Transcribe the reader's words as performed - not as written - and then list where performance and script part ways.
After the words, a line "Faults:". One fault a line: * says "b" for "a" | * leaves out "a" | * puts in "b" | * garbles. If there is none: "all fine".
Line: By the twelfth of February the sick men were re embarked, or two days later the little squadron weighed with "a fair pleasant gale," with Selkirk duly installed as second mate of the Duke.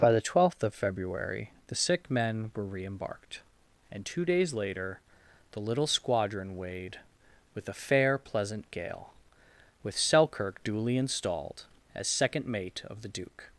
By the twelfth of February the sick men were re embarked, and two days later the little squadron weighed with "a fair pleasant gale," with Selkirk duly installed as second mate of the Duke.
Faults:
* says "and" for "or"